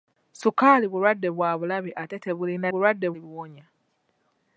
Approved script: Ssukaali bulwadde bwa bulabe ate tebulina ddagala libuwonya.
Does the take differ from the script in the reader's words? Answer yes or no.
yes